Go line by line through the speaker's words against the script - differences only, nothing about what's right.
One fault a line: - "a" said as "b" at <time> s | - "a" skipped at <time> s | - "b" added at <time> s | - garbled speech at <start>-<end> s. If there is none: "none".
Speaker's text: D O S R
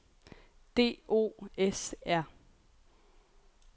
none